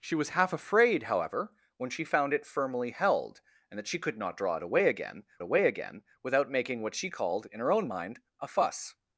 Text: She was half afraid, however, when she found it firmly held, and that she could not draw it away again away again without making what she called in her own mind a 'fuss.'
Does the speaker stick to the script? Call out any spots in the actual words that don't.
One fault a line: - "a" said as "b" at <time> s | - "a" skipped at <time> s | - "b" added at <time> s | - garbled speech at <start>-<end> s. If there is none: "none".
none